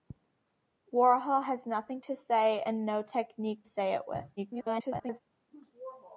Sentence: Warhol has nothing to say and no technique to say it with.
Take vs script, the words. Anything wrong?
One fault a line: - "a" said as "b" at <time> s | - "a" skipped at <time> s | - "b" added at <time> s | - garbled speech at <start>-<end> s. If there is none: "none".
- "to" skipped at 3.6 s
- garbled speech at 4.4-5.2 s